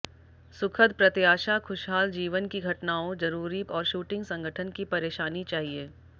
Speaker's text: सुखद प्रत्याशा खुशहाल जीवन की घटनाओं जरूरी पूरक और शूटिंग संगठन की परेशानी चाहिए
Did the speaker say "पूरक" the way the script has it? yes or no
no